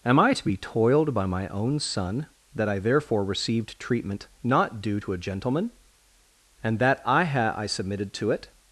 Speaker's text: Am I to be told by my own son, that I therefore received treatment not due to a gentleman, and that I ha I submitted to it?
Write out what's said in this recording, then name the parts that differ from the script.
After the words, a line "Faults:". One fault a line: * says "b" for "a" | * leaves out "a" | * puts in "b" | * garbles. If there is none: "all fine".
Am I to be toiled by my own son, that I therefore received treatment not due to a gentleman, and that I ha I submitted to it?
Faults:
* says "toiled" for "told"